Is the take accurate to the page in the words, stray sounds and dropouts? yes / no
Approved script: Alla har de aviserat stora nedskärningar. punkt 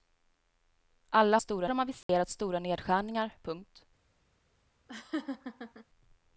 no